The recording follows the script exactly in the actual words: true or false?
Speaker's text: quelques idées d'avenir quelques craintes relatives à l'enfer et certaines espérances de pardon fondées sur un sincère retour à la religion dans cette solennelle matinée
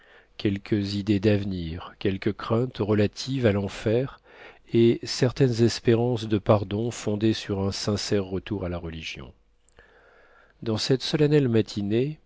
true